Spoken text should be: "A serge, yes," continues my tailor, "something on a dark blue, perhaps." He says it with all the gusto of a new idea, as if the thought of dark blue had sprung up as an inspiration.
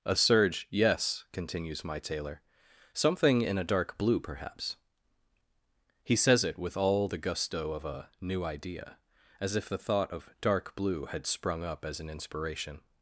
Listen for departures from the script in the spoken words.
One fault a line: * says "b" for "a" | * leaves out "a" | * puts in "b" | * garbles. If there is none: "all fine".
* says "in" for "on"